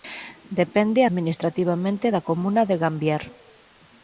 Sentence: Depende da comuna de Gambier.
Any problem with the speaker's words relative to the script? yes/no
yes